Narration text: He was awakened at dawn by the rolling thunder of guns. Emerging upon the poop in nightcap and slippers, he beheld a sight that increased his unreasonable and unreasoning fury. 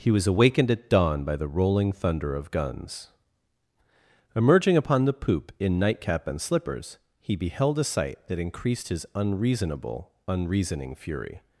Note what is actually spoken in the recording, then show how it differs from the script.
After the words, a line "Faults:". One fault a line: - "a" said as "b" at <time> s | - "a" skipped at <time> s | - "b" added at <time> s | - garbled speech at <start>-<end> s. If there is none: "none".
He was awakened at dawn by the rolling thunder of guns. Emerging upon the poop in nightcap and slippers, he beheld a sight that increased his unreasonable unreasoning fury.
Faults:
- "and" skipped at 10.1 s